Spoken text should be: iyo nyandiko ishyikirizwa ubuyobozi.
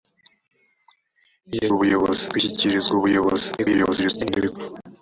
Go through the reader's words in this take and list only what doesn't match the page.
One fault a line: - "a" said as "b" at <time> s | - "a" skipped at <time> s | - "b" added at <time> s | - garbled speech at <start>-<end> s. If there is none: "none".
- "nyandiko" said as "ubuyobozi" at 1.7 s
- garbled speech at 3.6-4.6 s